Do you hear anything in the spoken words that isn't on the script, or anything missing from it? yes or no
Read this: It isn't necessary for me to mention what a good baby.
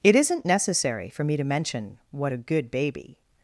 no